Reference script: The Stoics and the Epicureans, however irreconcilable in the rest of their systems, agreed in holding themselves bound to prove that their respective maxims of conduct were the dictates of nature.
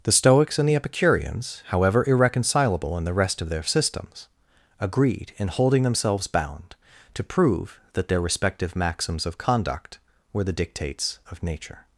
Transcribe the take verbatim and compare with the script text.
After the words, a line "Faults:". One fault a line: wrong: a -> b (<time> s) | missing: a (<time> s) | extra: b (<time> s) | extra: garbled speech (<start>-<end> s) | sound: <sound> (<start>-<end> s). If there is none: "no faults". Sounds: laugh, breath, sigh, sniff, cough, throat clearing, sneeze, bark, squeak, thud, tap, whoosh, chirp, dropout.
The Stoics and the Epicureans, however irreconcilable in the rest of their systems, agreed in holding themselves bound to prove that their respective maxims of conduct were the dictates of nature.
Faults:
no faults